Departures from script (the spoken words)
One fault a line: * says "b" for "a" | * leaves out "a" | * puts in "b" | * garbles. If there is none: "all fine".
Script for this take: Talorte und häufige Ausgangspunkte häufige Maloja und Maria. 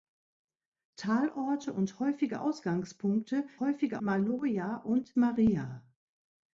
all fine